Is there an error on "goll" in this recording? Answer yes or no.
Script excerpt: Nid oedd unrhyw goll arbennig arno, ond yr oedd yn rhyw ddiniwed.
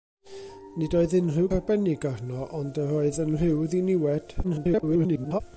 yes